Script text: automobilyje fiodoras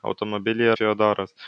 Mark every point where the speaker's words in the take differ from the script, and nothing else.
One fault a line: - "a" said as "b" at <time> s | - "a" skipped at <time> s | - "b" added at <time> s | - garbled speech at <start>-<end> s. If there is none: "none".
none